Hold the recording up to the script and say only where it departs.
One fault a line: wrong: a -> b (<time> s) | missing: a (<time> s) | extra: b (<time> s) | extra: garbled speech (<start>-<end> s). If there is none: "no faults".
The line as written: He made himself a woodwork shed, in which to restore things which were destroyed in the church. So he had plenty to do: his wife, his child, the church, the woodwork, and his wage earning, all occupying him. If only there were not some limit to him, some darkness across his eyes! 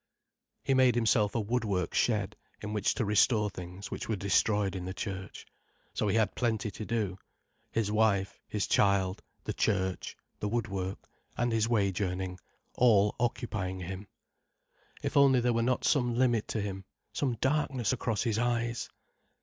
no faults